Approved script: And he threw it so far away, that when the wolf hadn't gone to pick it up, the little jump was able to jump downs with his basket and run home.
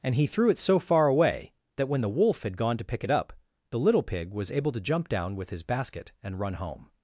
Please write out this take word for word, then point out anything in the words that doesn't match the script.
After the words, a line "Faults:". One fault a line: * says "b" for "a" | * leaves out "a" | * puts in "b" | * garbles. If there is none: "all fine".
And he threw it so far away, that when the wolf had gone to pick it up, the little pig was able to jump down with his basket and run home.
Faults:
* says "had" for "hadn't"
* says "pig" for "jump"
* says "down" for "downs"